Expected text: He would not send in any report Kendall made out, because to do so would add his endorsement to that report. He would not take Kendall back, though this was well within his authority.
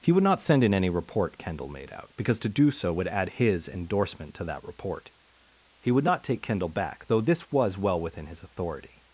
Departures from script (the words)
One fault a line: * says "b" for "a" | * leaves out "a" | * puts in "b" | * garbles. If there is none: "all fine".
all fine